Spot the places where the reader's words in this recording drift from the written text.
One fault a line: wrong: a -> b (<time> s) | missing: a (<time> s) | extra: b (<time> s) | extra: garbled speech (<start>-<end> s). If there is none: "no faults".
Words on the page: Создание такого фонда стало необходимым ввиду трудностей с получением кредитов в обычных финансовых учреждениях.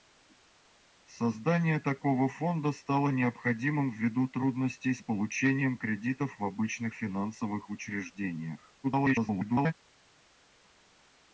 extra: garbled speech (8.8-9.7 s)